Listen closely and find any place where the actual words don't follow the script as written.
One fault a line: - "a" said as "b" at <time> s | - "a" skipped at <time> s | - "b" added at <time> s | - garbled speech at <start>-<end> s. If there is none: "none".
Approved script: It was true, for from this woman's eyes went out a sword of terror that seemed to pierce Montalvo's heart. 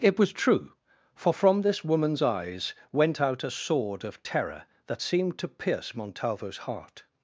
none